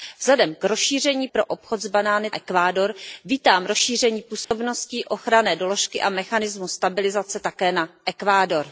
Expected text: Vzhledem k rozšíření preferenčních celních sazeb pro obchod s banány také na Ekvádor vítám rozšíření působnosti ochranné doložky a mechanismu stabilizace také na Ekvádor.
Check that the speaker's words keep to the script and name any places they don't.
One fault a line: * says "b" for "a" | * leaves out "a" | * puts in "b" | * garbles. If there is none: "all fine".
* leaves out "preferenčních celních sazeb"
* leaves out "také na"